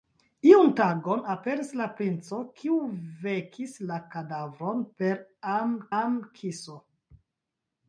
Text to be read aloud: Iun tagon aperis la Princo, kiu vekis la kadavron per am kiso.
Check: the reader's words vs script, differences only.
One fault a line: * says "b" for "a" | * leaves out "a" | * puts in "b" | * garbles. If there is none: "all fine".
* puts in "am"